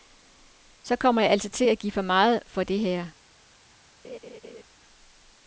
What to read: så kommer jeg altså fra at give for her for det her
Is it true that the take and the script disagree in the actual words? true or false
true